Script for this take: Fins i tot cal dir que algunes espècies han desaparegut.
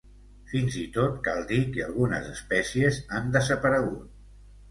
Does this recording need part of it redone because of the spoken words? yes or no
no